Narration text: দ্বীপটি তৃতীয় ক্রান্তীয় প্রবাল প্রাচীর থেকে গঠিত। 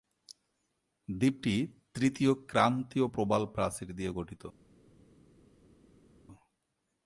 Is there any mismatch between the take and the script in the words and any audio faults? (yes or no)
yes